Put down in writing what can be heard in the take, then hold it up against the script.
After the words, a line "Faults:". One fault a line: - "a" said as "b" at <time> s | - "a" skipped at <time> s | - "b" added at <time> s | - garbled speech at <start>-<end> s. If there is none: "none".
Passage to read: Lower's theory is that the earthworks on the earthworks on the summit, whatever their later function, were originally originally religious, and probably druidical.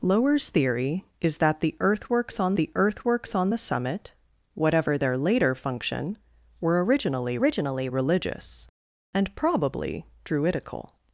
Lower's theory is that the earthworks on the earthworks on the summit, whatever their later function, were originally originally religious, and probably druidical.
Faults:
none